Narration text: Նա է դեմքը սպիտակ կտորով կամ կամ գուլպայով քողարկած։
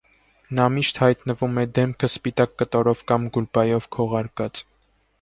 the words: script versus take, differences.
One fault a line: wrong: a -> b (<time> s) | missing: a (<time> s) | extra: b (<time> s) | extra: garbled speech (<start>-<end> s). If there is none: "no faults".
extra: միշտ հայտնվում (0.8 s)
missing: կամ (3.3 s)